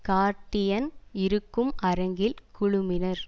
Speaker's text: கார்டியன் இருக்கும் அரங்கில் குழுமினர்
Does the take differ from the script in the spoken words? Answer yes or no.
no